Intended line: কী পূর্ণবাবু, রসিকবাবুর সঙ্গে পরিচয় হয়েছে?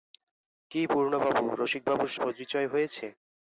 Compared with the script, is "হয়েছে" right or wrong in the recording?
right